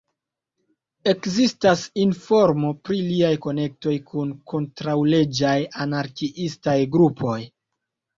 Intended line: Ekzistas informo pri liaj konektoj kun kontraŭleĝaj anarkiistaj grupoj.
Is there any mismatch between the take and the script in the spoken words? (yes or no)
no